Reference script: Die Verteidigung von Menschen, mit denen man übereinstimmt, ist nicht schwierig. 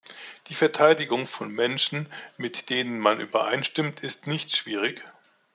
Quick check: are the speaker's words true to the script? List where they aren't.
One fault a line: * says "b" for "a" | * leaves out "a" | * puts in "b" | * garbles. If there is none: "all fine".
all fine